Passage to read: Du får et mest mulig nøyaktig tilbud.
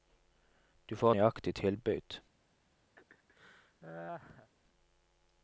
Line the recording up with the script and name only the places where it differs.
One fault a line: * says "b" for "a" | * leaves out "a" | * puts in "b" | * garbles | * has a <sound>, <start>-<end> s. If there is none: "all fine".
* leaves out "et mest mulig"
* has a laugh, 3.0-4.5 s